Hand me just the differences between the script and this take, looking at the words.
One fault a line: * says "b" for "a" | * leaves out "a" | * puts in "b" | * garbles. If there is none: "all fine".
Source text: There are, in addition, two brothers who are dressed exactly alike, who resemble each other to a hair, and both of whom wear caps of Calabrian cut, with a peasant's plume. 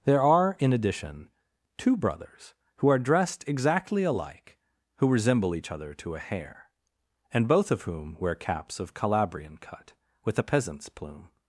all fine